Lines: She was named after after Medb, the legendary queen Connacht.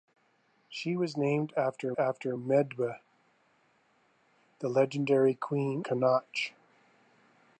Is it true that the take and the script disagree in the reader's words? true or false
false